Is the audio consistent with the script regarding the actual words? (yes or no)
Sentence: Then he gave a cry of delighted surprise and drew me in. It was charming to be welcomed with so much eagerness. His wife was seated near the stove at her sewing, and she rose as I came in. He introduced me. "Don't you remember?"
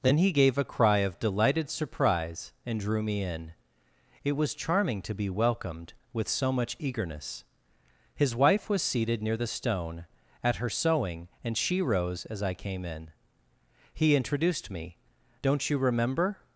no